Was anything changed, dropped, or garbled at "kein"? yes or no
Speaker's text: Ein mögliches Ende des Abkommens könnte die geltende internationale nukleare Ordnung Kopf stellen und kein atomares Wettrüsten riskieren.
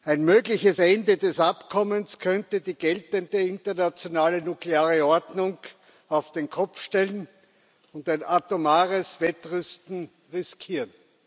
yes